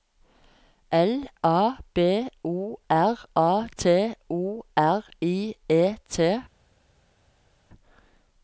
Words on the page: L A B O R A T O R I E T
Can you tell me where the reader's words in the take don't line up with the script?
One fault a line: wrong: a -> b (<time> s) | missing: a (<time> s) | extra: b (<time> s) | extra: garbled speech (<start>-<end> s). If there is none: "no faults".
no faults